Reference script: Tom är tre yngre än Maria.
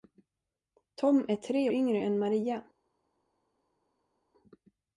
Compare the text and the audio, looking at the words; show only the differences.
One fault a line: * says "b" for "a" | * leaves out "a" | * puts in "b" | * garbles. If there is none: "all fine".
all fine